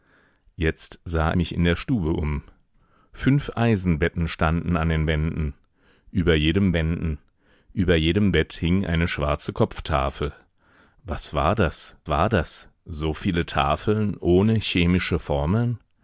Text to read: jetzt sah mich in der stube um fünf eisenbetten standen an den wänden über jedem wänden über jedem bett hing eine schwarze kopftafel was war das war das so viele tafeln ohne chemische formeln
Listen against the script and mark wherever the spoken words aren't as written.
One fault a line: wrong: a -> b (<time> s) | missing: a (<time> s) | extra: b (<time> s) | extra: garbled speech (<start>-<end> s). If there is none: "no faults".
no faults